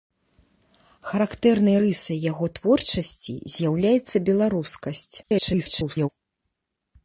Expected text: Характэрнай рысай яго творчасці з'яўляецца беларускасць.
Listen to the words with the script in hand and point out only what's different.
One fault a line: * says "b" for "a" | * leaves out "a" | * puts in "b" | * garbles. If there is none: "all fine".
* garbles